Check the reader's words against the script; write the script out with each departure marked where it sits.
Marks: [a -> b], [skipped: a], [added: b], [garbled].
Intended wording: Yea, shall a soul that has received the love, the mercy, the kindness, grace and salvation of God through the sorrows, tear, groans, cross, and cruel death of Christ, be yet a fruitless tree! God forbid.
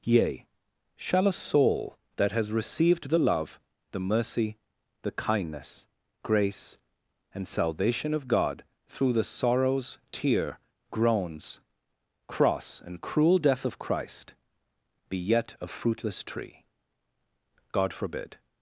Yea, shall a soul that has received the love, the mercy, the kindness, grace and salvation of God through the sorrows, tear, groans, cross, and cruel death of Christ, be yet a fruitless tree! God forbid.